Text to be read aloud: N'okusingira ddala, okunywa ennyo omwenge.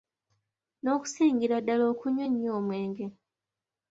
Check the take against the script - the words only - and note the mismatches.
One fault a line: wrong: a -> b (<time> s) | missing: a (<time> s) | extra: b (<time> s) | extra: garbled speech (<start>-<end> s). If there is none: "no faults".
no faults